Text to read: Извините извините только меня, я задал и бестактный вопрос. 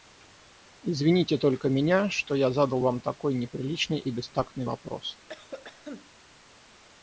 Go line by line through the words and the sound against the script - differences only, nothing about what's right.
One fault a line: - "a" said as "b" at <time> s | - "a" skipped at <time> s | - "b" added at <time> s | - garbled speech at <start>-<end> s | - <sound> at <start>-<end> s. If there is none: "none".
- "извините" skipped at 1.4 s
- "что" added at 2.1 s
- "вам такой неприличный" added at 2.8 s
- cough at 5.3-6.1 s